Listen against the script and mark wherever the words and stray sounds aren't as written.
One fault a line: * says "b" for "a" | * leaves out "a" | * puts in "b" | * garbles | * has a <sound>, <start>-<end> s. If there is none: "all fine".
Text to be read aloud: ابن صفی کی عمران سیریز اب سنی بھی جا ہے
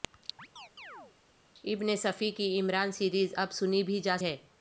* has a chirp, 0.4-1.1 s